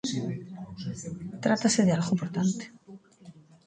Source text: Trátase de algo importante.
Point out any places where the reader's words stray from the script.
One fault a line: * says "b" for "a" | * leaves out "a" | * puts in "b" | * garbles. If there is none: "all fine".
all fine